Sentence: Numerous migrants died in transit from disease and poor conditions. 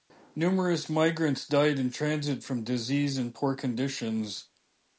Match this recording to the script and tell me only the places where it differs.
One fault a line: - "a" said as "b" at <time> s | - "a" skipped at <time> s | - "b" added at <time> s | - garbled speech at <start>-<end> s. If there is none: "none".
none